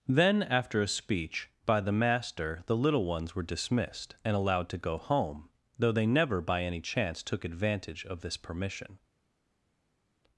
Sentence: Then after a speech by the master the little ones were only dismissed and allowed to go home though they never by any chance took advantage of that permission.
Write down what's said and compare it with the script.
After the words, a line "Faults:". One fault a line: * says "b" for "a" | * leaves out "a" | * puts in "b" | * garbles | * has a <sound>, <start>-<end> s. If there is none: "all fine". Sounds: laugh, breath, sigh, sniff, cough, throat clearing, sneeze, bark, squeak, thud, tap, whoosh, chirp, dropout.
Then after a speech by the master the little ones were dismissed and allowed to go home though they never by any chance took advantage of this permission.
Faults:
* leaves out "only"
* says "this" for "that"